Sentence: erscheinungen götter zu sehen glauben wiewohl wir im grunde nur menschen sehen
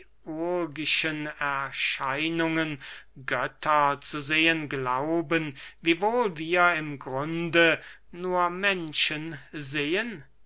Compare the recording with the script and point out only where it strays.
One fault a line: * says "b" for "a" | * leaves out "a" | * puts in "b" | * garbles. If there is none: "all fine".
all fine